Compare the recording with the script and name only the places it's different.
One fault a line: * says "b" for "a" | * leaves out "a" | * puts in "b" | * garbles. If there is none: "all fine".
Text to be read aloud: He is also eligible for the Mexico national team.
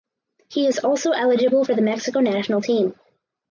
all fine